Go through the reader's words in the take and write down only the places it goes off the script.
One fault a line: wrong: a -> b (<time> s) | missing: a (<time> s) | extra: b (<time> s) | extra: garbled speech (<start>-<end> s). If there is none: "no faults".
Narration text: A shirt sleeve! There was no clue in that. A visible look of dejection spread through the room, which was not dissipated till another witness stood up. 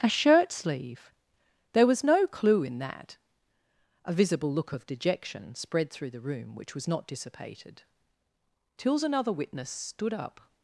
wrong: till -> tills (8.8 s)